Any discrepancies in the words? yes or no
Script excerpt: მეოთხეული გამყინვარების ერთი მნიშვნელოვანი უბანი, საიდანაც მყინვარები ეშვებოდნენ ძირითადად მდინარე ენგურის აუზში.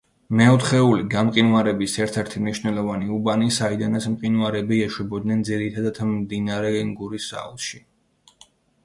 yes